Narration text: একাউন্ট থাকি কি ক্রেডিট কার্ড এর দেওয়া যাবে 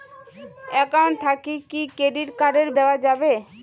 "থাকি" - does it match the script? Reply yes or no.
yes